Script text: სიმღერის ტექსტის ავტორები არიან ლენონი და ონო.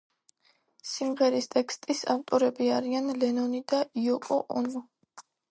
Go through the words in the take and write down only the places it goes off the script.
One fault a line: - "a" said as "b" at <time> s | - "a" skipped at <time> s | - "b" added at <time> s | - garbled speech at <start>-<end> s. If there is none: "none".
- "იოკო" added at 4.0 s